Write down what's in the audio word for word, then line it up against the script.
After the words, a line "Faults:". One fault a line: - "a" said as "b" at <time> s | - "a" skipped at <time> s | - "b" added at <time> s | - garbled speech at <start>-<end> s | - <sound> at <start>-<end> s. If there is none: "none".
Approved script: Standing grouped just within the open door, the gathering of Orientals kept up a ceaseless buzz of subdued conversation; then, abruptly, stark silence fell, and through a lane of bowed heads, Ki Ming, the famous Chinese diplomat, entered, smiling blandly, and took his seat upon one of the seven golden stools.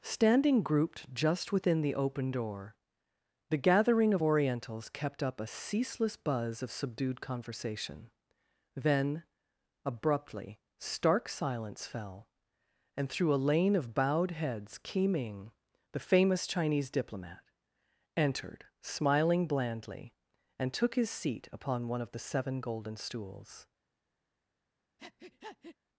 Standing grouped just within the open door, the gathering of Orientals kept up a ceaseless buzz of subdued conversation; then, abruptly, stark silence fell, and through a lane of bowed heads, Ki Ming, the famous Chinese diplomat, entered, smiling blandly, and took his seat upon one of the seven golden stools.
Faults:
- breath at 25.0-25.8 s